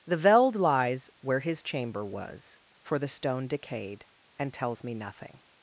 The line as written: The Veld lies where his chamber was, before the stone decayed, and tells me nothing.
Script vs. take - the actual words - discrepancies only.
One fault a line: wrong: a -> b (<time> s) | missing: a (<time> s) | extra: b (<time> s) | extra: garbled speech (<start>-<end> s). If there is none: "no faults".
wrong: before -> for (2.8 s)